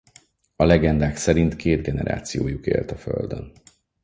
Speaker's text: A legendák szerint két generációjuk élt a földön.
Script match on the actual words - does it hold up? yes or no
yes